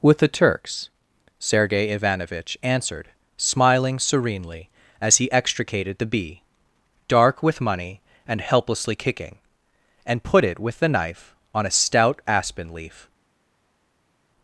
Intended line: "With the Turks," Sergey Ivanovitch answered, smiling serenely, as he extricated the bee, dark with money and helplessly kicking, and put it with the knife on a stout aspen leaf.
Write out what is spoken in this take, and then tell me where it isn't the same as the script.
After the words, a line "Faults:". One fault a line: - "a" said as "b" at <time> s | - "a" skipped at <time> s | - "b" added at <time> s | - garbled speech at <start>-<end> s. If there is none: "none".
"With the Turks," Sergey Ivanovitch answered, smiling serenely, as he extricated the bee, dark with money and helplessly kicking, and put it with the knife on a stout aspen leaf.
Faults:
none